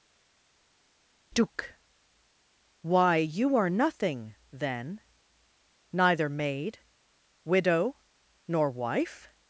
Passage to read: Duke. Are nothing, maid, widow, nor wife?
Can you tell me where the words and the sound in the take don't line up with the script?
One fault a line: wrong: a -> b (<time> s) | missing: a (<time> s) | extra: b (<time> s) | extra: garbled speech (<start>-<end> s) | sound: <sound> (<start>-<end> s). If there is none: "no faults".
extra: Why you (2.8 s)
extra: then neither (4.5 s)